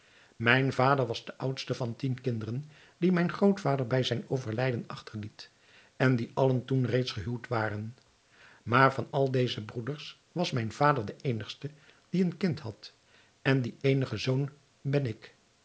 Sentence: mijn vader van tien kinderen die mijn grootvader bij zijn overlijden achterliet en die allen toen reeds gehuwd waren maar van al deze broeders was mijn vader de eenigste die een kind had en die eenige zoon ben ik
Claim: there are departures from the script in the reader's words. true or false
true